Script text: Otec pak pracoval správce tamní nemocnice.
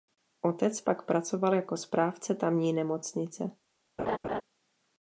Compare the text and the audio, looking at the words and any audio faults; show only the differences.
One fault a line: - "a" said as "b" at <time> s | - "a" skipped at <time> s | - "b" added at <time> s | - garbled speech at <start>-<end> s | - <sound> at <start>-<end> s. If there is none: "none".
- "jako" added at 1.6 s
- laugh at 4.0-4.4 s